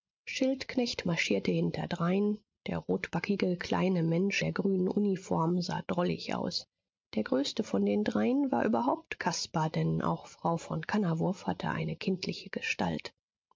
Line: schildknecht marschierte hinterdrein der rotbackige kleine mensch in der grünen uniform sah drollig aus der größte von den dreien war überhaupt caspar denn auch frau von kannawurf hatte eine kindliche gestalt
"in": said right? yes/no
no